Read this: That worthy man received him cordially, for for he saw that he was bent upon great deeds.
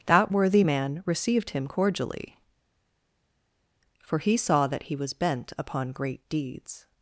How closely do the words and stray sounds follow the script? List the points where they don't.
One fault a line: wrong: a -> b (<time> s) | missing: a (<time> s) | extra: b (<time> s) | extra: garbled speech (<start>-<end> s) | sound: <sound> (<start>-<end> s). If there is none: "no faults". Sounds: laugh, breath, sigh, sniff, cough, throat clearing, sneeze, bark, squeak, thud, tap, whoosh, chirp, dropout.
missing: for (4.2 s)